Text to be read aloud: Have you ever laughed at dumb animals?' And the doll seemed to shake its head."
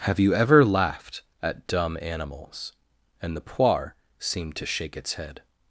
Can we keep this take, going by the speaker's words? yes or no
no